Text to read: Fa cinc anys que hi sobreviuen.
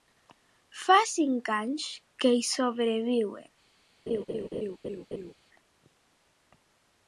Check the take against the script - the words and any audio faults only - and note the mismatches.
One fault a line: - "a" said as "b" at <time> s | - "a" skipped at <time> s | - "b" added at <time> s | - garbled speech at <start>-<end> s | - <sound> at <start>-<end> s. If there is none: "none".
- laugh at 4.1-5.3 s